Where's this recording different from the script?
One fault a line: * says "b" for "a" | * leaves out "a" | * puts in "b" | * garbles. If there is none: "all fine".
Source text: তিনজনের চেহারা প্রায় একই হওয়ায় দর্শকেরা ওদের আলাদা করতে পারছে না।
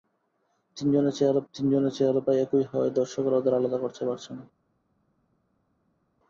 * puts in "তিনজনের চেহারা"